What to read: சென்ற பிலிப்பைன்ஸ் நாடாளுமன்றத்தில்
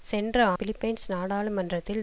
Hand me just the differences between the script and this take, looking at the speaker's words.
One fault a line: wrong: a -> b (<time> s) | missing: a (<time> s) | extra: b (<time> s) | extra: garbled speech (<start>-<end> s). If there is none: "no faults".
no faults